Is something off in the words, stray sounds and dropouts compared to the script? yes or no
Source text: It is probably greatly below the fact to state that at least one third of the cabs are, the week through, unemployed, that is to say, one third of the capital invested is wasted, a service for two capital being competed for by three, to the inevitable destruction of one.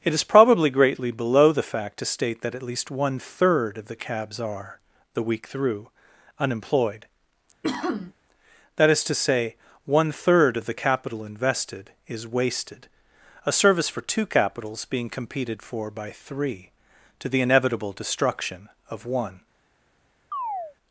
yes